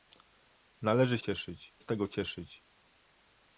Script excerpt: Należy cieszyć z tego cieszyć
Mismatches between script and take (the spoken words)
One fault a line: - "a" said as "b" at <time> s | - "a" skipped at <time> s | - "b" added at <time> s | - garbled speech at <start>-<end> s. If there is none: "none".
none